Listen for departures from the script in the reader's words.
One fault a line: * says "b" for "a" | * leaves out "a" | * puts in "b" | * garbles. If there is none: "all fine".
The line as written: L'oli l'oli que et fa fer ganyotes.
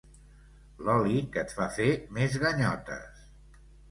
* leaves out "l'oli"
* puts in "més"